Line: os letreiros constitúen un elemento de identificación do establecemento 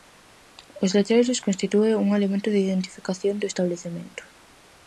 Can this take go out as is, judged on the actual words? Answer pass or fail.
pass